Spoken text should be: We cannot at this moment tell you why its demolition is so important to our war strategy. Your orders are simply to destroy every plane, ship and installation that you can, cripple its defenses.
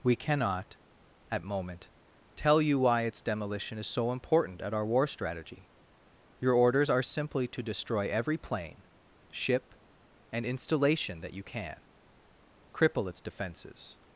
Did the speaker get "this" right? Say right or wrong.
wrong